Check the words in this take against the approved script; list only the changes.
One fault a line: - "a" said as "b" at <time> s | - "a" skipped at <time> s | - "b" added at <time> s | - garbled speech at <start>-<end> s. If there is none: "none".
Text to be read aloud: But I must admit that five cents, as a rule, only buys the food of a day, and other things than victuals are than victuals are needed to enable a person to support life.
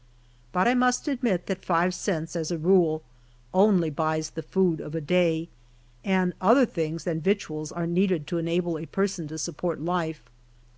- "than victuals are" skipped at 7.9 s